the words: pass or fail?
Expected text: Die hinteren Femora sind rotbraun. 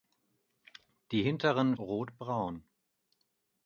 fail